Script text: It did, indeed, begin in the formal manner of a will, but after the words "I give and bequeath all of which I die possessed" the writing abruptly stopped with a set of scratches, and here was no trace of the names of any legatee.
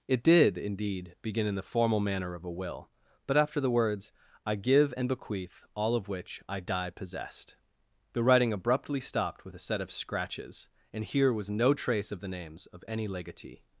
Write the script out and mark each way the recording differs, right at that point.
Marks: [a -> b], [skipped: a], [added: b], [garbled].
It did, indeed, begin in the formal manner of a will, but after the words "I give and bequeath all of which I die possessed" the writing abruptly stopped with a set of scratches, and here was no trace of the names of any legatee.